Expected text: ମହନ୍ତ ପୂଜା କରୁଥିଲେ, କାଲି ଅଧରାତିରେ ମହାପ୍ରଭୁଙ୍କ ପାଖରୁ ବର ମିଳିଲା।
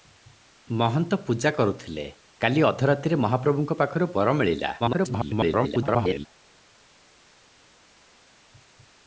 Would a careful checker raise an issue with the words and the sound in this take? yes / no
yes